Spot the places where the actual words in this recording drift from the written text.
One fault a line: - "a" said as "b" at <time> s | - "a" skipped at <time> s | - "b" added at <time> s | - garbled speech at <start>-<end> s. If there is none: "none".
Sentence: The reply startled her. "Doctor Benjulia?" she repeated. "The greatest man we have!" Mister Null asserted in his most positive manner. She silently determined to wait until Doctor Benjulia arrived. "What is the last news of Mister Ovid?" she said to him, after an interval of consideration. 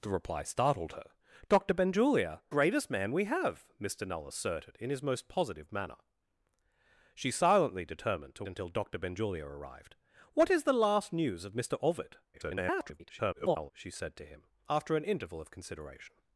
- "she repeated The" skipped at 2.4 s
- "wait" skipped at 8.5 s
- garbled speech at 12.3-13.7 s